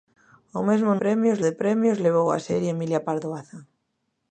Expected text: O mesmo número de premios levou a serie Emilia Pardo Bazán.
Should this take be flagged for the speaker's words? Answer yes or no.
yes